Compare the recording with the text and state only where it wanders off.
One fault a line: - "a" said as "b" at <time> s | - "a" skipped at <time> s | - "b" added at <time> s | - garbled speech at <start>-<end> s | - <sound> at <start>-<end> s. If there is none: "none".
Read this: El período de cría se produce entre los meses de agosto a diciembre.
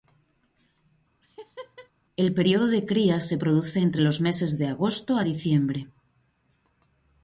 - laugh at 1.2-1.9 s